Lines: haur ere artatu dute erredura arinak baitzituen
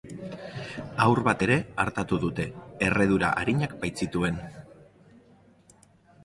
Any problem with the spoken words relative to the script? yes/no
yes